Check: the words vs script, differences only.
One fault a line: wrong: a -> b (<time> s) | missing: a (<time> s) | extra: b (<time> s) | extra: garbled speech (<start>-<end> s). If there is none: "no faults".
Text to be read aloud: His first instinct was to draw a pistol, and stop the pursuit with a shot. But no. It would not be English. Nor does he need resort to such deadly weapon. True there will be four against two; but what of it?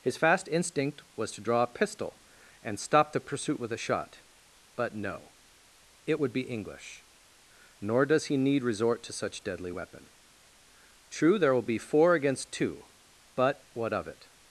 wrong: first -> fast (0.2 s)
missing: not (6.3 s)